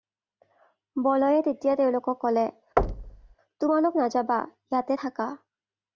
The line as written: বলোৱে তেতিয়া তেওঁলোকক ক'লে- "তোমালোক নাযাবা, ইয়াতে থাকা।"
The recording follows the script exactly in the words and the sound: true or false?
false